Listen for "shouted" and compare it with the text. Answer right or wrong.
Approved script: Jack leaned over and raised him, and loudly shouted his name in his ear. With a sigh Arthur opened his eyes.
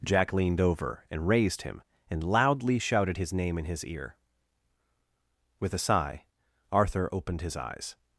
right